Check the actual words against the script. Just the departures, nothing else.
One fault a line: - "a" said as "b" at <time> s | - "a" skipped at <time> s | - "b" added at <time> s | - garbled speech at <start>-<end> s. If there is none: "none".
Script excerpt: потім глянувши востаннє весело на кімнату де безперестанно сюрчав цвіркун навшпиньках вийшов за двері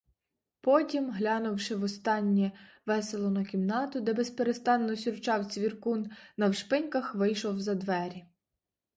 none